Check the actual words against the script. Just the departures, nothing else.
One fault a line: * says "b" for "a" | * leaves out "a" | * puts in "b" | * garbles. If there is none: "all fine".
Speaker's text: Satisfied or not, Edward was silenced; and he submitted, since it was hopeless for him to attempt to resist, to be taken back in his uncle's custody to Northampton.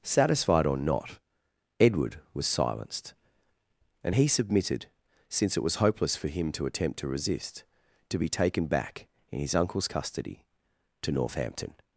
all fine